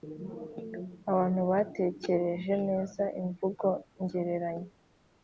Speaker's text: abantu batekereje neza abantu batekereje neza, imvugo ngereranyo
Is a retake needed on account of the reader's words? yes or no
yes